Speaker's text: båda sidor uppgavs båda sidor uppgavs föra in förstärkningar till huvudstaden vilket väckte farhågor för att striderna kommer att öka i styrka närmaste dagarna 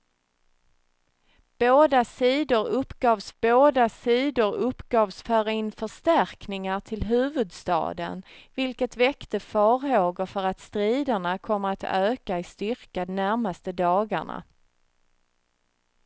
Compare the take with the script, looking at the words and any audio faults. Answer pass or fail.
pass